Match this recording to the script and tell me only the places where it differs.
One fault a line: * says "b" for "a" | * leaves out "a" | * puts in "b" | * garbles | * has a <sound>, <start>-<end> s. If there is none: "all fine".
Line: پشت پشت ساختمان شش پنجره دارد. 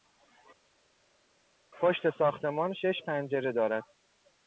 * leaves out "پشت"